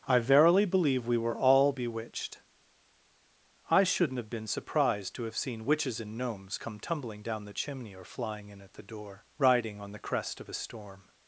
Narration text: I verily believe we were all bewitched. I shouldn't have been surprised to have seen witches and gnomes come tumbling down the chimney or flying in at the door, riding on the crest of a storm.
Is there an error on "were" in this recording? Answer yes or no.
no